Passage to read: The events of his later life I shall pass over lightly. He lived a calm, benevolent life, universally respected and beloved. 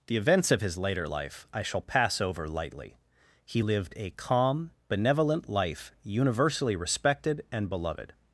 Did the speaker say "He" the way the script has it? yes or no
yes